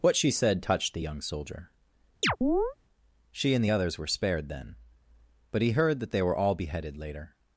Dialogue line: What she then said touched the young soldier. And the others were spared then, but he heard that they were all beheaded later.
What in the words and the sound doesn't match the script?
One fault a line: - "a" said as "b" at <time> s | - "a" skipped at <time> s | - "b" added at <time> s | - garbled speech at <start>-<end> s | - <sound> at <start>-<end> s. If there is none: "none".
- "then" skipped at 0.3 s
- chirp at 2.2-2.8 s
- "She" added at 3.3 s